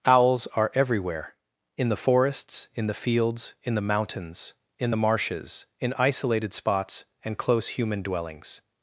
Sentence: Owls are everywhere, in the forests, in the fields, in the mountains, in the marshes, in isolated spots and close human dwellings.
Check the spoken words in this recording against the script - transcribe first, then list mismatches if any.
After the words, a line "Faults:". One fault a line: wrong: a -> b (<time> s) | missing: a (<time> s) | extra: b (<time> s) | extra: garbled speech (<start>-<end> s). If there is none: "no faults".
Owls are everywhere, in the forests, in the fields, in the mountains, in the marshes, in isolated spots and close human dwellings.
Faults:
no faults